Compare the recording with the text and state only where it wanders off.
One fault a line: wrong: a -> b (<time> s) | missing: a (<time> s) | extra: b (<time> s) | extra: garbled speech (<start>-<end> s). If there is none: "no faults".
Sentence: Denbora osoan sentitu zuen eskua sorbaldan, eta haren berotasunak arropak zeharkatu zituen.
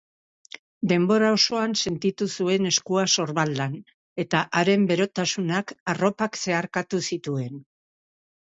no faults